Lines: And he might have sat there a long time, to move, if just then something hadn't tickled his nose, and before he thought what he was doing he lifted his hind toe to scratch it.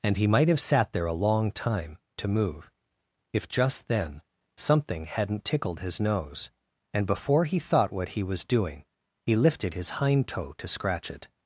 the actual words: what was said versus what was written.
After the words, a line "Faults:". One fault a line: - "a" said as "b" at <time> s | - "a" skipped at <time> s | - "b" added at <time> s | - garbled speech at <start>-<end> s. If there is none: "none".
And he might have sat there a long time, to move, if just then something hadn't tickled his nose, and before he thought what he was doing he lifted his hind toe to scratch it.
Faults:
none